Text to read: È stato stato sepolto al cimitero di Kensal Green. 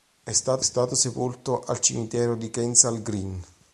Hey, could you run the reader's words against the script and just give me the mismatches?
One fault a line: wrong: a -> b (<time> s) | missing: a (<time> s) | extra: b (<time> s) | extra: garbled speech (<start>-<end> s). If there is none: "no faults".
no faults